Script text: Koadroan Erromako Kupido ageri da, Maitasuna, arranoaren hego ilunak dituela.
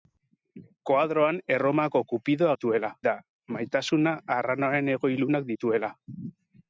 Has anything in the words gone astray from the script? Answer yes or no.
yes